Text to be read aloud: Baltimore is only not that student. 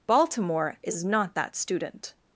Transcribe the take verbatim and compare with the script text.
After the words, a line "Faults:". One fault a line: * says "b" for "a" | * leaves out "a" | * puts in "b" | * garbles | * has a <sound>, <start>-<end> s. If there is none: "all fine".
Baltimore is not that student.
Faults:
* leaves out "only"